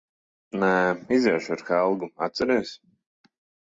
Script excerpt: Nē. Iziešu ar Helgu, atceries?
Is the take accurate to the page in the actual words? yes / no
yes